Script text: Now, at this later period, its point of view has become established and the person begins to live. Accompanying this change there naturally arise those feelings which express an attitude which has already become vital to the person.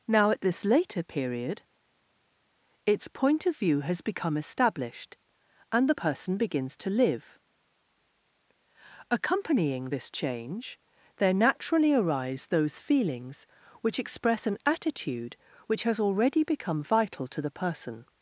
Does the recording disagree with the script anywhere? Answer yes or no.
no